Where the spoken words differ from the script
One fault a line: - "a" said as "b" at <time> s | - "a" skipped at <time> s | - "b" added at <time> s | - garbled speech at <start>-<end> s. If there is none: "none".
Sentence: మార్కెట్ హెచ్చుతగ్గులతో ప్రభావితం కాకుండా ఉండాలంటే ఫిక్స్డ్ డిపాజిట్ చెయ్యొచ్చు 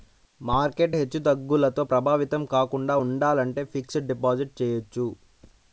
none